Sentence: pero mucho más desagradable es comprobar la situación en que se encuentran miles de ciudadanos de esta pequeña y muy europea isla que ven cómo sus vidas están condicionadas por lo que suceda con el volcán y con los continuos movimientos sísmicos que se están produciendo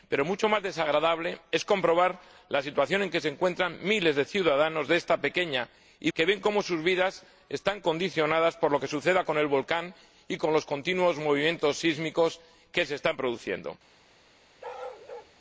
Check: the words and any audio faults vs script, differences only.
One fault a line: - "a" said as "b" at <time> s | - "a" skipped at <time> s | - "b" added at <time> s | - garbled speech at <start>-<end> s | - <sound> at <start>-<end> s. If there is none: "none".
- "muy europea isla" skipped at 6.1 s
- bark at 14.6-15.3 s